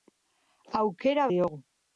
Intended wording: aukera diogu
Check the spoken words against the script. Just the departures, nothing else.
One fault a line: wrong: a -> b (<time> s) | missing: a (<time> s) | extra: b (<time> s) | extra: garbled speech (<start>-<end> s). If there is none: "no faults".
no faults